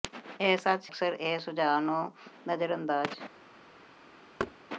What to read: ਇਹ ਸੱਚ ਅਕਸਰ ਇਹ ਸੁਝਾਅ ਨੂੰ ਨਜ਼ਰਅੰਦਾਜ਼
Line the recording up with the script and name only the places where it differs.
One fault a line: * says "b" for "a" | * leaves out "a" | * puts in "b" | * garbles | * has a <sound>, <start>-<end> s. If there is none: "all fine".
* has a thud, 4.4-4.6 s